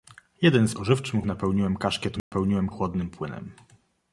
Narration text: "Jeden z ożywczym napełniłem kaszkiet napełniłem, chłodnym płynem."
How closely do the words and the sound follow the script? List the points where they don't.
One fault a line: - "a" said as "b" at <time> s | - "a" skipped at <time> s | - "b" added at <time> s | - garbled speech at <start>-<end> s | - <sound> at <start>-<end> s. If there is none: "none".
- dropout at 2.2-2.3 s